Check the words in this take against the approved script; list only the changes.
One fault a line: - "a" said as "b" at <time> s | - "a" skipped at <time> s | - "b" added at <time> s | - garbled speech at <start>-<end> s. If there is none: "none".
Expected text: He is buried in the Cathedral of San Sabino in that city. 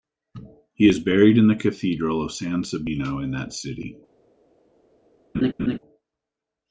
none